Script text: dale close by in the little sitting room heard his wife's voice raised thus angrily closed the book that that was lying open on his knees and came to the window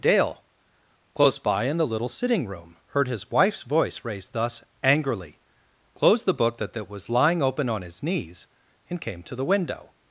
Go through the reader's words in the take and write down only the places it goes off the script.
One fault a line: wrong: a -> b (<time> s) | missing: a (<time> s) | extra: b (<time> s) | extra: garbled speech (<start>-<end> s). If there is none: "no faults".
no faults